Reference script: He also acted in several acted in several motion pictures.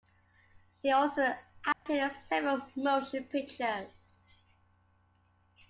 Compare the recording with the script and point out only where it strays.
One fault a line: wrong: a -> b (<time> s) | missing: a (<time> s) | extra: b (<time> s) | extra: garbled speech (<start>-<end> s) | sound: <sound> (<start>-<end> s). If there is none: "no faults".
sound: dropout (1.7-1.9 s)
missing: acted in several (2.7 s)